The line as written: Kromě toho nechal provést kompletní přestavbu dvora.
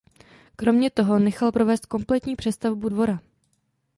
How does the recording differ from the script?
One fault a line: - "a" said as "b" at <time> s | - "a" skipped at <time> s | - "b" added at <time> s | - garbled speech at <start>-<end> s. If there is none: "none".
none